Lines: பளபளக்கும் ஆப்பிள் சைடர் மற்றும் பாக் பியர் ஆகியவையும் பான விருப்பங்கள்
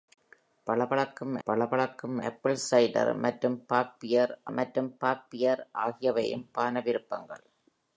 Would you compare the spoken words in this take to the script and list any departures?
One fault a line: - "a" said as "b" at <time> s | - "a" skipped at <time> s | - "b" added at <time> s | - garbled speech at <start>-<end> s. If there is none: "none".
- "பளபளக்கும்" added at 1.5 s
- "மற்றும் பாக் பியர்" added at 4.5 s